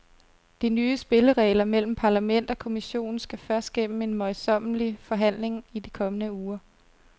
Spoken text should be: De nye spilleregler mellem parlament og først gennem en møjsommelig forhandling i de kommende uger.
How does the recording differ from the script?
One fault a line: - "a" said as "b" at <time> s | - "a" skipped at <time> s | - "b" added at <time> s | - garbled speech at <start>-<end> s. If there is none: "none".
- "kommission skal" added at 2.6 s